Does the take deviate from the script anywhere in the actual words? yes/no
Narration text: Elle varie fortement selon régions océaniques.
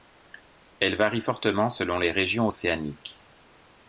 yes